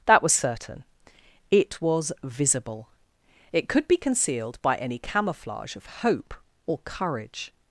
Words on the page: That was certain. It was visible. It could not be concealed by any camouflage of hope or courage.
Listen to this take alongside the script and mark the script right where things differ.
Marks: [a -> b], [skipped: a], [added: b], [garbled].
That was certain. It was visible. It could [skipped: not] be concealed by any camouflage of hope or courage.